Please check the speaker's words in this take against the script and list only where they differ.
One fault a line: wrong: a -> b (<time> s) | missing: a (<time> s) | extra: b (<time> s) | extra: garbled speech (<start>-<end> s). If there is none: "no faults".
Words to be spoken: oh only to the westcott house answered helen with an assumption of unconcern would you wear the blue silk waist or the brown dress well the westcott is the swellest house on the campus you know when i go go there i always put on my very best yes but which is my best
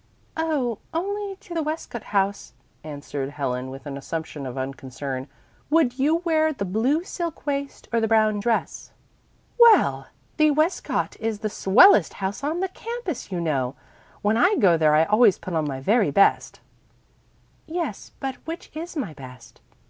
missing: go (14.8 s)